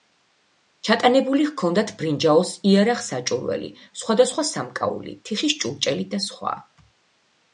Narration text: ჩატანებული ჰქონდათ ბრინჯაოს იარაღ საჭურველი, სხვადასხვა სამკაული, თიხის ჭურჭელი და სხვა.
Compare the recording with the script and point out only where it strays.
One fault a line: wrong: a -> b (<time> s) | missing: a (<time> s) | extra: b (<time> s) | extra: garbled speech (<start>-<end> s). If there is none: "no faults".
no faults